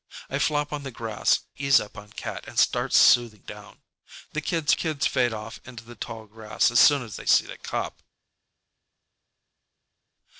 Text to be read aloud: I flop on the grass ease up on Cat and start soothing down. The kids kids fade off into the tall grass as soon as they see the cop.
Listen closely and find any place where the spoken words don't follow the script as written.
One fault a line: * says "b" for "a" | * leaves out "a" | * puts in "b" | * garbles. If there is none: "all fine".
all fine